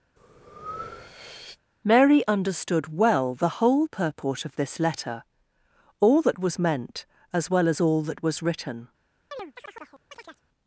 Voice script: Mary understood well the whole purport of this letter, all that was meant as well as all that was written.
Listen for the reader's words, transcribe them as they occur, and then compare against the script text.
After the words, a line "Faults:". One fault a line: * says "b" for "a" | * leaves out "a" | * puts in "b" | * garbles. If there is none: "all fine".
Mary understood well the whole purport of this letter, all that was meant as well as all that was written.
Faults:
all fine